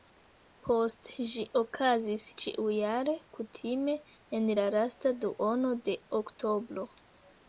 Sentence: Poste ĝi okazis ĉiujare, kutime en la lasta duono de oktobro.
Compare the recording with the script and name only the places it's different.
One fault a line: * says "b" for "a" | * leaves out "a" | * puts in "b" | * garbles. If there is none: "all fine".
all fine